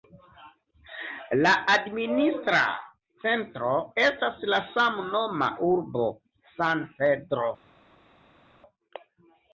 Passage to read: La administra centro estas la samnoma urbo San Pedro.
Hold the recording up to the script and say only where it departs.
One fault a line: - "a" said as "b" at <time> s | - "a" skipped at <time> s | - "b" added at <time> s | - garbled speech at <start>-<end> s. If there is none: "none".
none